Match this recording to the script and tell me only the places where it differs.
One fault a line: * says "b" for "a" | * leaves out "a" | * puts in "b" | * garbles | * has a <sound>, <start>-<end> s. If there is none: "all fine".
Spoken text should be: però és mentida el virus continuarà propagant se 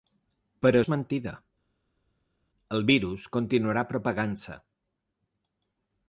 all fine